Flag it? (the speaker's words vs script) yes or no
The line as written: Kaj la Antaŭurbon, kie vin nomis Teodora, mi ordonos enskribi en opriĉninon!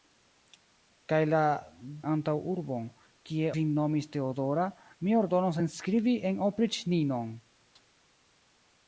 no